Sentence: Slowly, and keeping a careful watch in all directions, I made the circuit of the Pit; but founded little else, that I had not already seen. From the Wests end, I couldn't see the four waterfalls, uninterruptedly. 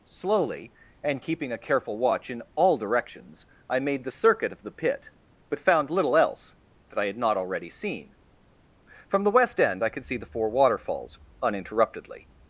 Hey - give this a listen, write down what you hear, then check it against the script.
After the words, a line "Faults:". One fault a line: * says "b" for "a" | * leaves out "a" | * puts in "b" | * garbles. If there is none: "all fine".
Slowly, and keeping a careful watch in all directions, I made the circuit of the Pit; but found little else, that I had not already seen. From the West end, I could see the four waterfalls, uninterruptedly.
Faults:
* says "found" for "founded"
* says "West" for "Wests"
* says "could" for "couldn't"